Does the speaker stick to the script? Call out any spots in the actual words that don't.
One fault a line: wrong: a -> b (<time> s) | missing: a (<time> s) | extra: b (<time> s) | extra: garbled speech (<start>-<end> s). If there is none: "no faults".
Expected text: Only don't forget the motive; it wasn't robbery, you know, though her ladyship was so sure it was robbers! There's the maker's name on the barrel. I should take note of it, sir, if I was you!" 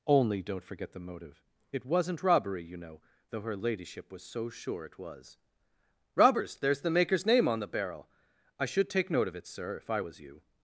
no faults